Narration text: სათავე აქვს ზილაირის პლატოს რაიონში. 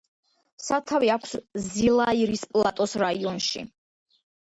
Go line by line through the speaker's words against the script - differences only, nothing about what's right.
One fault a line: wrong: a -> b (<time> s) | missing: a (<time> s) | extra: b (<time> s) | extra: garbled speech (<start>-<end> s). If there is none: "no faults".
no faults